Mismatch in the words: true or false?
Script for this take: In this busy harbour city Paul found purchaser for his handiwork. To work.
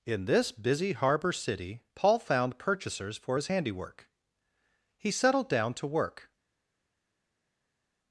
true